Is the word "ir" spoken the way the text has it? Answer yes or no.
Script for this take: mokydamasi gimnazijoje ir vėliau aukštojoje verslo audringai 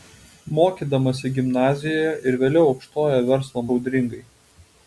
yes